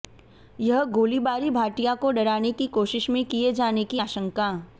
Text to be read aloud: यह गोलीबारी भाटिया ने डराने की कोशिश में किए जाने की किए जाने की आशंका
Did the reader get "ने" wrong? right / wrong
wrong